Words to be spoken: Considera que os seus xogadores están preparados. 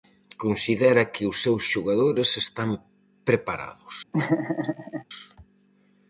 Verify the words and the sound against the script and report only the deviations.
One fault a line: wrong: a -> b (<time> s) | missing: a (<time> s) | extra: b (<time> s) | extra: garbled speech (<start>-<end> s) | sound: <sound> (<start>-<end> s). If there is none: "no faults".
sound: laugh (4.1-5.0 s)